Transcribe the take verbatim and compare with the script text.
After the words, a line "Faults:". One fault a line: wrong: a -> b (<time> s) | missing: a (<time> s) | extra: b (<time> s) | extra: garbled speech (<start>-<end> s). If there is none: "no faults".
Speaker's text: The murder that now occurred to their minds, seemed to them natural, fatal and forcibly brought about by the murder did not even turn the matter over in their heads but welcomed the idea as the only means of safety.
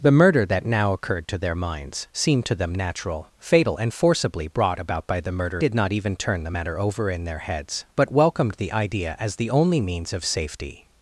The murder that now occurred to their minds, seemed to them natural, fatal and forcibly brought about by the murder did not even turn the matter over in their heads but welcomed the idea as the only means of safety.
Faults:
no faults